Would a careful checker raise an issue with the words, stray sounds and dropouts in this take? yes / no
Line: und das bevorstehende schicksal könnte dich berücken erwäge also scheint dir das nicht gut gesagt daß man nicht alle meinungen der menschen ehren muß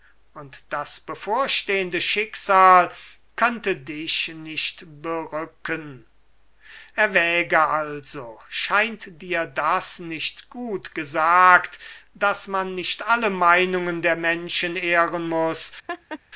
yes